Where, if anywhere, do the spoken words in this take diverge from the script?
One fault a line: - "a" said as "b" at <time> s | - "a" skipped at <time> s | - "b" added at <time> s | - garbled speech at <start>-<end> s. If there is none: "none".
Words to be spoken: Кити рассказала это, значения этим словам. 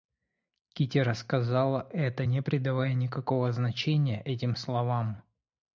- "не придавая никакого" added at 2.2 s